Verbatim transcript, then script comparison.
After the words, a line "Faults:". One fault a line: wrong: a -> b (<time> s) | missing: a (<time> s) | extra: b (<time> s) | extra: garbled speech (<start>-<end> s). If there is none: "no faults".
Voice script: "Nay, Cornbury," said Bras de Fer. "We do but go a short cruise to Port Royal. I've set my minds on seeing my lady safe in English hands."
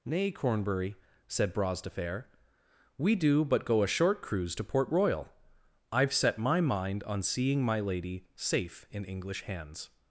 "Nay, Cornbury," said Bras de Fer. "We do but go a short cruise to Port Royal. I've set my mind on seeing my lady safe in English hands."
Faults:
wrong: minds -> mind (6.6 s)